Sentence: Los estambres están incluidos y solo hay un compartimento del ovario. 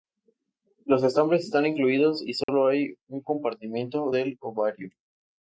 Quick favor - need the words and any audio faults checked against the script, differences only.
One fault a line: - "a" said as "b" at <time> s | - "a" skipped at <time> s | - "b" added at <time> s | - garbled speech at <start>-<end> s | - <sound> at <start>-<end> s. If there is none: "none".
- dropout at 2.4-2.5 s